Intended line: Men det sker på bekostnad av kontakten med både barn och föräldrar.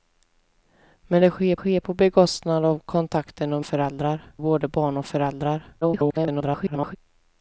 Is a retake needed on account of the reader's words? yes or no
yes